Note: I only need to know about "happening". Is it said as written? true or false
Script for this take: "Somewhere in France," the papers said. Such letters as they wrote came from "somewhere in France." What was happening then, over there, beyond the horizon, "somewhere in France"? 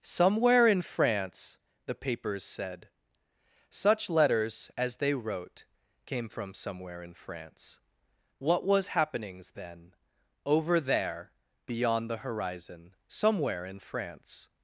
false